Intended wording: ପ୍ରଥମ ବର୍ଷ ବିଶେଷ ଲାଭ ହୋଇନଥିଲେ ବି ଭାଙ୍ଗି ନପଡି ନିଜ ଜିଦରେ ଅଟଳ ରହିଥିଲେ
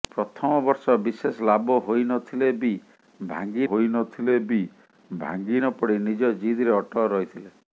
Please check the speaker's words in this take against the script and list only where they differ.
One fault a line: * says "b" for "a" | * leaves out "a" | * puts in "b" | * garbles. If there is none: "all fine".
* puts in "ହୋଇନଥିଲେ ବି ଭାଙ୍ଗି"